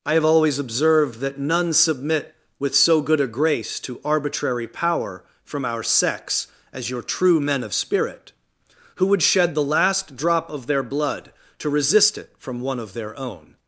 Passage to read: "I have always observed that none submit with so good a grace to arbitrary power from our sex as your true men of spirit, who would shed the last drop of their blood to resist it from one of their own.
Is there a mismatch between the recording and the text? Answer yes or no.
no